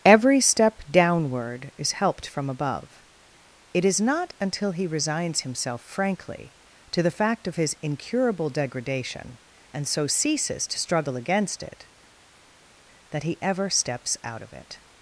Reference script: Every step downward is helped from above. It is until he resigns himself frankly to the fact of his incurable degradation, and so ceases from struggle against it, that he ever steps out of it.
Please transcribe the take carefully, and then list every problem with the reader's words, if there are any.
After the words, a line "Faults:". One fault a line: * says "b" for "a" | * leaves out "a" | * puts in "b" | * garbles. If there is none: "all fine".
Every step downward is helped from above. It is not until he resigns himself frankly to the fact of his incurable degradation, and so ceases to struggle against it, that he ever steps out of it.
Faults:
* puts in "not"
* says "to" for "from"